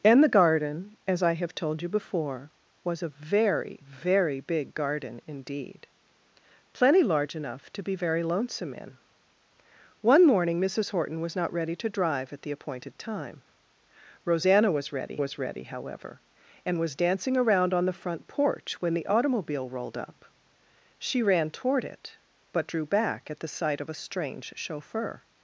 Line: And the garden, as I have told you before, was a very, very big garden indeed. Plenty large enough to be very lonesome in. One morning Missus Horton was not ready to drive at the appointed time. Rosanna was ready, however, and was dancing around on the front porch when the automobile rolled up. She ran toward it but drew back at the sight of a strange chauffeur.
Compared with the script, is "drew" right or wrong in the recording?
right